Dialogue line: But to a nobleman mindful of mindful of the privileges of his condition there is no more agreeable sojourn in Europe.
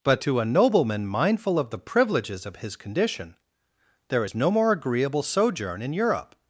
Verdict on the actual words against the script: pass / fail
fail